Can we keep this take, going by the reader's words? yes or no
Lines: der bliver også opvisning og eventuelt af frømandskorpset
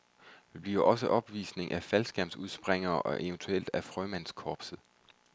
no